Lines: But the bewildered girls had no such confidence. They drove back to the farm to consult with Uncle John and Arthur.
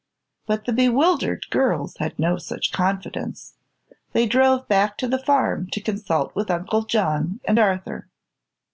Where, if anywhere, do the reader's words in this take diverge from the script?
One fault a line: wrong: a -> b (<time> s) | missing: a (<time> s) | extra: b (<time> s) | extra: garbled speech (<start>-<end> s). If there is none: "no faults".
no faults